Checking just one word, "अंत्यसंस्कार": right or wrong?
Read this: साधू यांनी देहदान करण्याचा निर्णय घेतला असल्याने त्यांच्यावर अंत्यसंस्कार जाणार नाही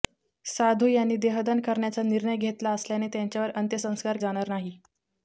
right